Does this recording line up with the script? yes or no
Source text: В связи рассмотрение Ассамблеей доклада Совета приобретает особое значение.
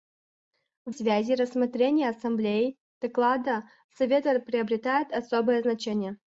yes